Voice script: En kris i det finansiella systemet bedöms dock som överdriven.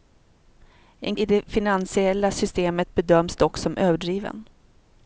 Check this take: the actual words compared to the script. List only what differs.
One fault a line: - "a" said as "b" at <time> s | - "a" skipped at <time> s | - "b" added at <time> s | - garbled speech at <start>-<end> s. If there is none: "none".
- "kris" skipped at 1.1 s